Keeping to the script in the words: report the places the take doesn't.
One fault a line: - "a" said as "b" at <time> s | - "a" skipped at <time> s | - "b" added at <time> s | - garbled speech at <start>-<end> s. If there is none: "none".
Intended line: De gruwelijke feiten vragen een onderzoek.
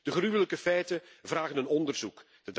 none